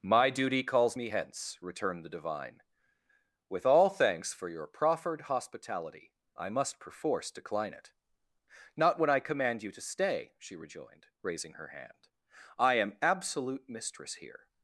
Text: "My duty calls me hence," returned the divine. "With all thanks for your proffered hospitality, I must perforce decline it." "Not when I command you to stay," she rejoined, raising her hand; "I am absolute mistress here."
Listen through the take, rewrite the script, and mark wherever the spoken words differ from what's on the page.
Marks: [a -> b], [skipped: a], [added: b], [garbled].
"My duty calls me hence," returned the divine. "With all thanks for your proffered hospitality, I must perforce decline it." "Not when I command you to stay," she rejoined, raising her hand; "I am absolute mistress here."